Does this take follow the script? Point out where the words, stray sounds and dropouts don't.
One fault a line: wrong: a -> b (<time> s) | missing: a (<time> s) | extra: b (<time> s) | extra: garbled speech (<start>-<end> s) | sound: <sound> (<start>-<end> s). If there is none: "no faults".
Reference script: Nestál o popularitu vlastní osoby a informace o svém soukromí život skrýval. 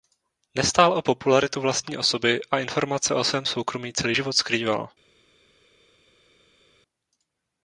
extra: celý (3.9 s)